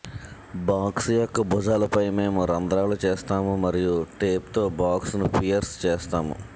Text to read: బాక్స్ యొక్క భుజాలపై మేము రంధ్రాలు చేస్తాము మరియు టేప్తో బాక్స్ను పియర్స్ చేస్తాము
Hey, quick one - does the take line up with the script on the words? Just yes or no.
yes